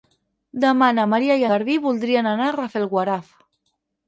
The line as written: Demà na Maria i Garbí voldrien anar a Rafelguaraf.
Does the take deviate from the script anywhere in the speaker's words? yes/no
no